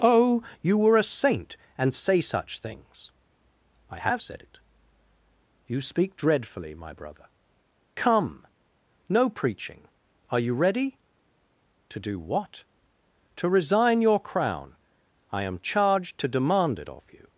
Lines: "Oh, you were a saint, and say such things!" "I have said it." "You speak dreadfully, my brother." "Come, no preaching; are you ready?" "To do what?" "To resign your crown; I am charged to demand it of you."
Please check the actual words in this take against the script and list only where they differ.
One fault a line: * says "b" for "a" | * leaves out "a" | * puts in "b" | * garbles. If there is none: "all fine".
all fine